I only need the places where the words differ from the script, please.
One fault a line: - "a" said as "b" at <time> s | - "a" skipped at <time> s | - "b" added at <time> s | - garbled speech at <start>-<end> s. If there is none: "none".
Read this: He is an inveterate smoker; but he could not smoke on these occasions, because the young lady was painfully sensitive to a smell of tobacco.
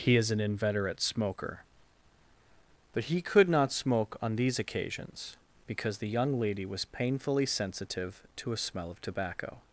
none